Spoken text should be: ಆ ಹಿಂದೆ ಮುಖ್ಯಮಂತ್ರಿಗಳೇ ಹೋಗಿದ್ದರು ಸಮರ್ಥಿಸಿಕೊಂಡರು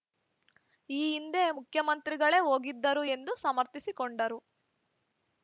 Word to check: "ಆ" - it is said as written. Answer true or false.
false